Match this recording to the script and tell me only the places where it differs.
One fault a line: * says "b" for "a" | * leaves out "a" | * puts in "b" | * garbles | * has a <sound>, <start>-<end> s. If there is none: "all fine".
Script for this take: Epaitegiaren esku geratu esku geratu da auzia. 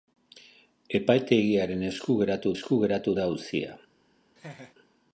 * has a laugh, 4.4-4.7 s